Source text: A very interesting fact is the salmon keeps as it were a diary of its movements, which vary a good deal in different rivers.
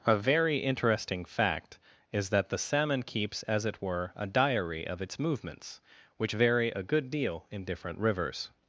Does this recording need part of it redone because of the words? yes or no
yes